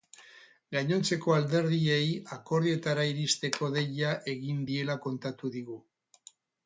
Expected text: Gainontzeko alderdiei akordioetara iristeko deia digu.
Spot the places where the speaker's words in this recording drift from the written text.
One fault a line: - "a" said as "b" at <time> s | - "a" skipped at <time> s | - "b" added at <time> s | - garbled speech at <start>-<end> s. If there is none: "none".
- "egin diela kontatu" added at 4.3 s